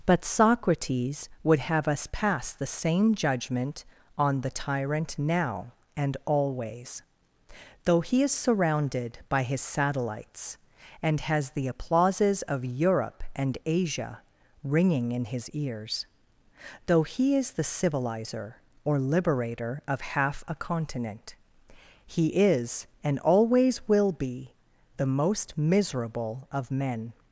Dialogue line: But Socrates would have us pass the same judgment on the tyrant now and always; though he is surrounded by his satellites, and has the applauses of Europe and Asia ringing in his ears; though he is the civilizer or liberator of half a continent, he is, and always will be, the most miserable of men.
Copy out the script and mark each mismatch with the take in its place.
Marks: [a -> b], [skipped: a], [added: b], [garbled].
But Socrates would have us pass the same judgment on the tyrant now and always; though he is surrounded by his satellites, and has the applauses of Europe and Asia ringing in his ears; though he is the civilizer or liberator of half a continent, he is, and always will be, the most miserable of men.